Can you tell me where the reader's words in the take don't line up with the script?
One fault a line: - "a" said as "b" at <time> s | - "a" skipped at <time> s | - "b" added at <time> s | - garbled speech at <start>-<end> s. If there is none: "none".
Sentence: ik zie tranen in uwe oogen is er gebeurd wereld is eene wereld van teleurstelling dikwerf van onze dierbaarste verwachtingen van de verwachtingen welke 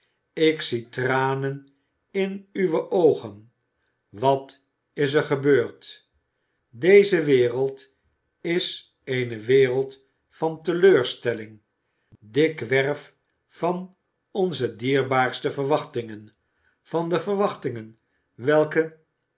- "wat" added at 4.1 s
- "deze" added at 6.7 s